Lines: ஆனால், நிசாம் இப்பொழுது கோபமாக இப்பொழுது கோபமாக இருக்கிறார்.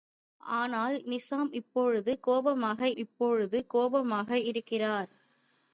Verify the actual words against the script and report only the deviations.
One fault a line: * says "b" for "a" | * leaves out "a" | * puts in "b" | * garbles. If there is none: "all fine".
all fine